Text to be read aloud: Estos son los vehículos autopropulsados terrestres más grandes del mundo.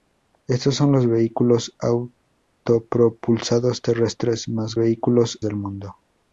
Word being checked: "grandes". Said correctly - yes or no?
no